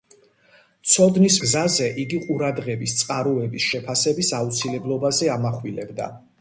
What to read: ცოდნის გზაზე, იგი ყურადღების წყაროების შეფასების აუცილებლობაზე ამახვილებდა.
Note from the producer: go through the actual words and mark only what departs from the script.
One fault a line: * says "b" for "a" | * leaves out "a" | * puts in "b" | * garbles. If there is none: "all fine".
all fine